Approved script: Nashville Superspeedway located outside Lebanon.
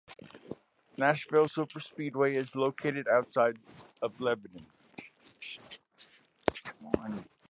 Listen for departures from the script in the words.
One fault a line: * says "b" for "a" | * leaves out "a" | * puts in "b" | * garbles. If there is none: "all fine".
* puts in "is"
* puts in "of"